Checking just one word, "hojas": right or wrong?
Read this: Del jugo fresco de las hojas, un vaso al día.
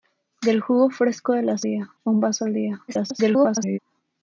wrong